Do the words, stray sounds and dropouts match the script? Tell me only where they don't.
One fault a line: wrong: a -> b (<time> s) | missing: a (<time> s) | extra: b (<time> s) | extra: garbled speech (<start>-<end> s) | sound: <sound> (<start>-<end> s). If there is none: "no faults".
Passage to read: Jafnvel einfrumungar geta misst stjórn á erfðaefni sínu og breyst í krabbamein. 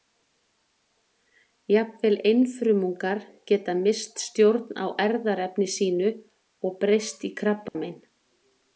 sound: dropout (7.7-7.8 s)